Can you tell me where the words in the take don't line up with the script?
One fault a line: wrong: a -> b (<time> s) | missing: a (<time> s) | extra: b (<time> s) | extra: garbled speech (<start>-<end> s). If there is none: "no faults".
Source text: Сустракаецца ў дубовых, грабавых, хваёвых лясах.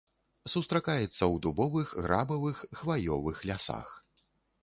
no faults